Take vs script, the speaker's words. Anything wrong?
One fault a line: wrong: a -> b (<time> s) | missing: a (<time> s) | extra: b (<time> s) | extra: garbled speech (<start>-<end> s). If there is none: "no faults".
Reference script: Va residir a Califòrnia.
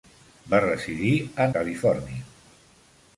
no faults